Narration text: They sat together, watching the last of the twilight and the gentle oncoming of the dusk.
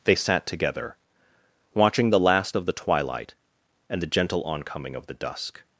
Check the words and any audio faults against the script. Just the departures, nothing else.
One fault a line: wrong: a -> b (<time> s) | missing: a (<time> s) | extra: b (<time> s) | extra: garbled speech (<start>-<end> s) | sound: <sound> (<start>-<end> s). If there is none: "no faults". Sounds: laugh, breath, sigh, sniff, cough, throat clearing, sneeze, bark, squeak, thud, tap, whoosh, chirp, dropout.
no faults